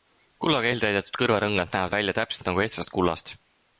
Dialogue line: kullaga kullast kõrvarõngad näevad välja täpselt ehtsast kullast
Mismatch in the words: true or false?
true